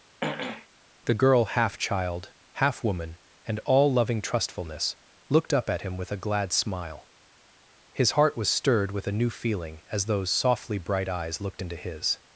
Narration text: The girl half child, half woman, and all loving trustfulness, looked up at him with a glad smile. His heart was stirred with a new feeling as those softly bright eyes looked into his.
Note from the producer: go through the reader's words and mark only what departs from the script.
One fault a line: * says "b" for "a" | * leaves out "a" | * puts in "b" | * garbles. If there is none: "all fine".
all fine